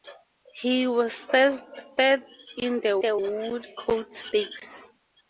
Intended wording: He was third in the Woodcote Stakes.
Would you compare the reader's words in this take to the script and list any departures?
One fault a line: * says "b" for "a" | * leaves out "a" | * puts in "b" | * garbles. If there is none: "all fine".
* puts in "the"